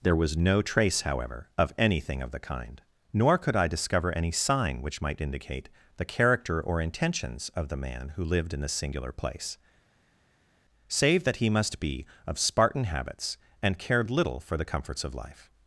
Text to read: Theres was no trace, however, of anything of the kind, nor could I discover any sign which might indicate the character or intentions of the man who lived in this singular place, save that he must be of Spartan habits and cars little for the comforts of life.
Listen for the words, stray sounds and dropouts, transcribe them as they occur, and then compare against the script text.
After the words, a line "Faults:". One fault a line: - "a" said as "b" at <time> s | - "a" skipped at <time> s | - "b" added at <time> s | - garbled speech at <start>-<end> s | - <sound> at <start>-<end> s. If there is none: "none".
There was no trace, however, of anything of the kind, nor could I discover any sign which might indicate the character or intentions of the man who lived in this singular place, save that he must be of Spartan habits and cared little for the comforts of life.
Faults:
- "Theres" said as "There" at 0.0 s
- "cars" said as "cared" at 13.8 s